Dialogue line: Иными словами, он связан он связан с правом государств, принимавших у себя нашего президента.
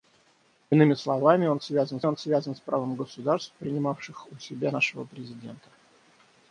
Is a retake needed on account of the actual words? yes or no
no